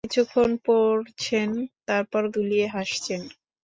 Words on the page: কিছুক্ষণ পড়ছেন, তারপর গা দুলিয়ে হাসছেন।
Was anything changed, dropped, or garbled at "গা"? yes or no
yes